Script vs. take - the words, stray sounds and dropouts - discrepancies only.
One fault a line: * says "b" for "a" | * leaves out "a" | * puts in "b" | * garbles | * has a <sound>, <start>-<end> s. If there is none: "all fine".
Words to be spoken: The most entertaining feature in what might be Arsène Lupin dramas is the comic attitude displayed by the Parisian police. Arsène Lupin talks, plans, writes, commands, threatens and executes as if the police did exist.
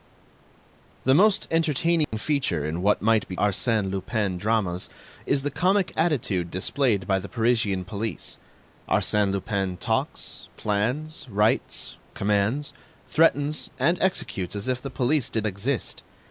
* has a dropout, 2.0-2.1 s